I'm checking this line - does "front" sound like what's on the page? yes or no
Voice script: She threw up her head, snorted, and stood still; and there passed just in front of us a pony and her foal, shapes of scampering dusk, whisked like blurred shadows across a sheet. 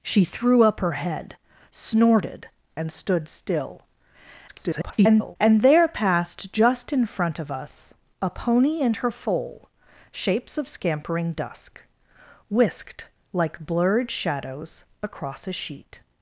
yes